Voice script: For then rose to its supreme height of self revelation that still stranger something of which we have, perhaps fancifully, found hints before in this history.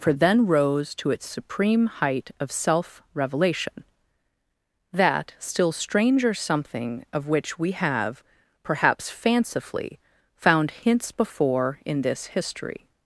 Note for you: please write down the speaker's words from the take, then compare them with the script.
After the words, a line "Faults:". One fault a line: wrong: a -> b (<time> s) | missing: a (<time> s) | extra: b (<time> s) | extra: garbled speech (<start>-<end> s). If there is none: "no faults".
For then rose to its supreme height of self revelation that still stranger something of which we have, perhaps fancifully, found hints before in this history.
Faults:
no faults